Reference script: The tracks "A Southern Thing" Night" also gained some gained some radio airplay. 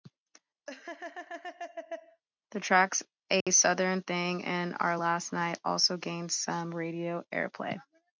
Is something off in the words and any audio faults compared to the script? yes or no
yes